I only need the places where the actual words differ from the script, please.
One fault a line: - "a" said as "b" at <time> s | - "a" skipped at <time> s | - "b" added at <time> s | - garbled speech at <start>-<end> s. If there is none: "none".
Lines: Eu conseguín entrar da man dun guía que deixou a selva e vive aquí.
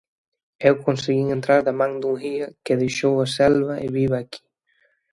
none